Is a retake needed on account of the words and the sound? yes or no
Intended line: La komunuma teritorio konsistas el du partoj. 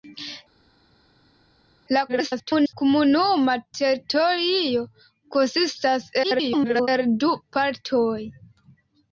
yes